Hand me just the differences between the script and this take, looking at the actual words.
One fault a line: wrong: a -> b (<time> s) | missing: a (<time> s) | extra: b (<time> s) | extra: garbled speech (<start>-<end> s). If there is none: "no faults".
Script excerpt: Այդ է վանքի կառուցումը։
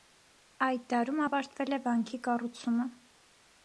extra: դարում ավարտվել (0.9 s)